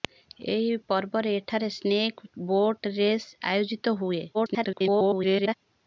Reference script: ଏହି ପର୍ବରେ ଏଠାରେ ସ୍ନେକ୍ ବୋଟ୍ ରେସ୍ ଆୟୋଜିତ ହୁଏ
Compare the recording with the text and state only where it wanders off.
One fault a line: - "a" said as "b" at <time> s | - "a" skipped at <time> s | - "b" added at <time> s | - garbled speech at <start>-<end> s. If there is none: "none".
- garbled speech at 4.3-5.5 s